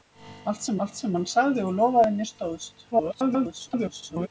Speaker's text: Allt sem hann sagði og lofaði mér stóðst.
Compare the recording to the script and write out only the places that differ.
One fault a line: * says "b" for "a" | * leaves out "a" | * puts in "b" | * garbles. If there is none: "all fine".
* puts in "allt sem"
* garbles